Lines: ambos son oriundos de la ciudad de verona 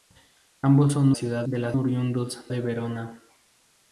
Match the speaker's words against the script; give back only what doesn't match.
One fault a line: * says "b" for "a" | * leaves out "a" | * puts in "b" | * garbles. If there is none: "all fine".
* says "ciudad" for "oriundos"
* says "oriundos" for "ciudad"